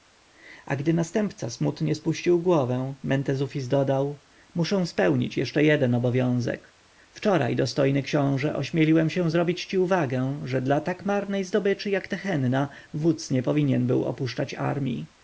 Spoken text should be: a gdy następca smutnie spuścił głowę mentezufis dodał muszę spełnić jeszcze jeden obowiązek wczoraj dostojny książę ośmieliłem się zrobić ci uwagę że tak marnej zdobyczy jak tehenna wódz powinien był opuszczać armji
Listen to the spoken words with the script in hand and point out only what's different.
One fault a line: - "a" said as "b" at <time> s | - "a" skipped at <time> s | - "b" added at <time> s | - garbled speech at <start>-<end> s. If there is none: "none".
- "dla" added at 10.6 s
- "nie" added at 13.3 s